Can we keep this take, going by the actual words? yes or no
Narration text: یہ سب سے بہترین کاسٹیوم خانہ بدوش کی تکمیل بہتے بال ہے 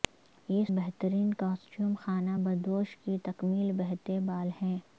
no